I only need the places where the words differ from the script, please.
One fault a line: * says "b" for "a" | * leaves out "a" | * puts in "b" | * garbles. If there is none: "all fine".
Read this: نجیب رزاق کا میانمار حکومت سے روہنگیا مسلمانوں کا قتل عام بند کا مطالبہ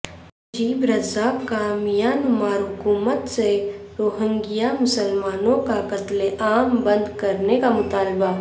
* puts in "کرنے"